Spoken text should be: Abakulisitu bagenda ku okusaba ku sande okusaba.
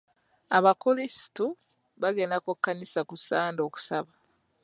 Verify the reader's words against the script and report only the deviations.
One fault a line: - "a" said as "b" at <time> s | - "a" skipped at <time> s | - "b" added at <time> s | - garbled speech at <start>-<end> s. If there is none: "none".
- "okusaba" said as "kkanisa" at 2.5 s